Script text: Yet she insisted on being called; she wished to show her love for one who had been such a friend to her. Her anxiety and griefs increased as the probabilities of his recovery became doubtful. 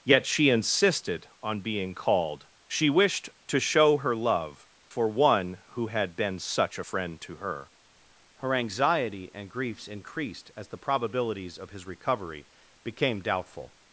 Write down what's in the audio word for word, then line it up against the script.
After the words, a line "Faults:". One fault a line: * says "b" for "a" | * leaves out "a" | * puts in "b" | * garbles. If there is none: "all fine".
Yet she insisted on being called; she wished to show her love for one who had been such a friend to her. Her anxiety and griefs increased as the probabilities of his recovery became doubtful.
Faults:
all fine